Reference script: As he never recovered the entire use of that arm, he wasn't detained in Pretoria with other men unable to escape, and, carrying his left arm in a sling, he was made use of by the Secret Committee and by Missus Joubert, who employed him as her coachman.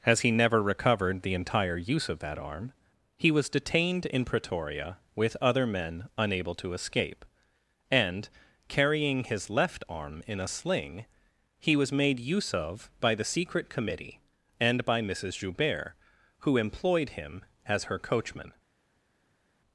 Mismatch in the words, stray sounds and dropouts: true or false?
true